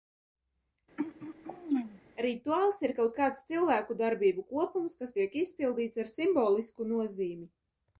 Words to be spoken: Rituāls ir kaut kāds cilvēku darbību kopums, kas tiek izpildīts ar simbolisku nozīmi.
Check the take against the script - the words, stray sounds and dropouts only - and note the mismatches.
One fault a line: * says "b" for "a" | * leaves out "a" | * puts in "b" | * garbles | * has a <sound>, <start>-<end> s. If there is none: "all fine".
* has a throat clearing, 1.0-2.0 s